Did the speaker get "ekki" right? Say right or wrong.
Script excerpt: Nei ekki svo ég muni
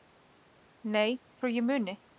wrong